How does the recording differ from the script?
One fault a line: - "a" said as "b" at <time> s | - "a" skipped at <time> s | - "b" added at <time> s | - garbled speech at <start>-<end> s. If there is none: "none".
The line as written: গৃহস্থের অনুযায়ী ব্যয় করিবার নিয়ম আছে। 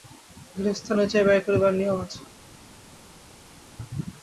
none